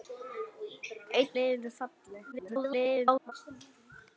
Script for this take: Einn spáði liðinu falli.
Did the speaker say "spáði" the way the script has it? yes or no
no